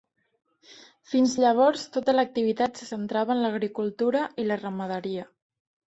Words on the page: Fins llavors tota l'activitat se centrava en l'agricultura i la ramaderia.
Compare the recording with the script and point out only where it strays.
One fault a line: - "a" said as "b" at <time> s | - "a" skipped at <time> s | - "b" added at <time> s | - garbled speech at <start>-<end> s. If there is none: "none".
none